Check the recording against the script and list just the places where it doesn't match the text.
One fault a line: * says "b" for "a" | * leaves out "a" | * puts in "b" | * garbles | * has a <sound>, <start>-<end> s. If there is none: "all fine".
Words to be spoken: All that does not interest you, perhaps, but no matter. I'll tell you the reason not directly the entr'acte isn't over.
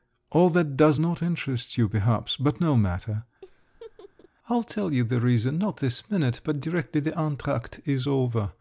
* has a laugh, 3.4-4.3 s
* puts in "this minute but"
* says "is" for "isn't"